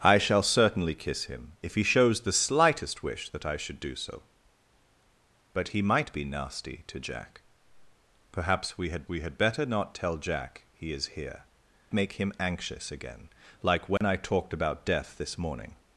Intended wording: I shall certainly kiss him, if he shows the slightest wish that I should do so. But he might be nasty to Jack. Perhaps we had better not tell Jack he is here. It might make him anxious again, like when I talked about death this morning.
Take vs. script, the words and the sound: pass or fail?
fail